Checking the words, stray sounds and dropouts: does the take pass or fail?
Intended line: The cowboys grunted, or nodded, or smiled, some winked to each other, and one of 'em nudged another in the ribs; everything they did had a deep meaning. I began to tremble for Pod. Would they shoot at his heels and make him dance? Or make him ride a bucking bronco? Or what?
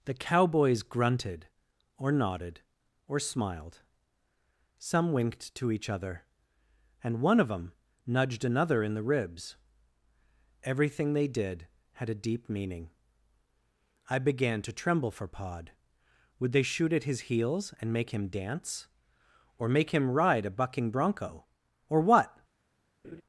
fail